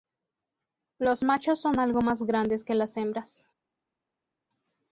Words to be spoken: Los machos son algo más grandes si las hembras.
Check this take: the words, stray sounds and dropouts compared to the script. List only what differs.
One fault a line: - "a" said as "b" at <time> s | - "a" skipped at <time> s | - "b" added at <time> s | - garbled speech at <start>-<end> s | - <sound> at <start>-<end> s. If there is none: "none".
- "si" said as "que" at 2.6 s